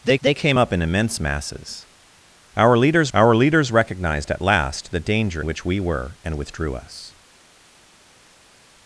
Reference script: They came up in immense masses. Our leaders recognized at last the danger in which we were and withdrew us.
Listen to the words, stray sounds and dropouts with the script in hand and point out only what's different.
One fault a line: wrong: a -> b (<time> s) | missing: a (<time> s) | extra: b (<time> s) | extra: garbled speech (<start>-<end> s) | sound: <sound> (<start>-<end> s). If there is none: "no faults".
extra: they (0.2 s)
extra: our leaders (3.1 s)
missing: in (5.4 s)